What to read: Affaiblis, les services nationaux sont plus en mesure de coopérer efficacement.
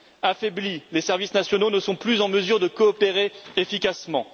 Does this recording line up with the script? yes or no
no